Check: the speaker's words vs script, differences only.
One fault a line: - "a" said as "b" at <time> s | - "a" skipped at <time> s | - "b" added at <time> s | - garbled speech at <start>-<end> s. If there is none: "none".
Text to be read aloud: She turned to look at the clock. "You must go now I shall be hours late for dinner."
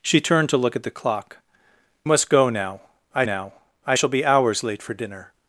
- "You" skipped at 1.4 s
- "now I" added at 3.2 s